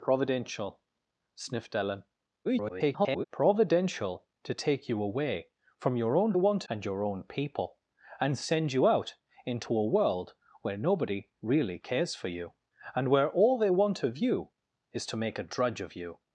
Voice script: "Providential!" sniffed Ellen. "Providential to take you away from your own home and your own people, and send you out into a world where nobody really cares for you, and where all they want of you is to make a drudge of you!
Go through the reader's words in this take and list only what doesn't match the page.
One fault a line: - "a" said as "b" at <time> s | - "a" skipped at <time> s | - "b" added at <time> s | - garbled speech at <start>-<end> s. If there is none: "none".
- garbled speech at 2.4-3.2 s
- "home" said as "want" at 6.3 s